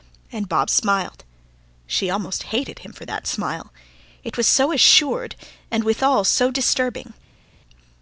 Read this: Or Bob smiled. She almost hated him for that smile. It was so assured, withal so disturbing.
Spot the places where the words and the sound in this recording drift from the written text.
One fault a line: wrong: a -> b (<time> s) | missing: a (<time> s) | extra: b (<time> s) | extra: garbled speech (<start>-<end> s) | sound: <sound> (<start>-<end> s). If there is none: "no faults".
wrong: Or -> And (0.3 s)
extra: and (5.7 s)